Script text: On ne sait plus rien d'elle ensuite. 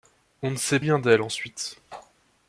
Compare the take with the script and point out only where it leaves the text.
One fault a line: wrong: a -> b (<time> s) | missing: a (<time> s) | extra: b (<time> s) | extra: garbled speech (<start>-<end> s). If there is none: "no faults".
missing: plus (0.8 s)